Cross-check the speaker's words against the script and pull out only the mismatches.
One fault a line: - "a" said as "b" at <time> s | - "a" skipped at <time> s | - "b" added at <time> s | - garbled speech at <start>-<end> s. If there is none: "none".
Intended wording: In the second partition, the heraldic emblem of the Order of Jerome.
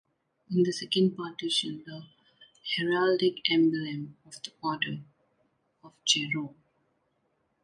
none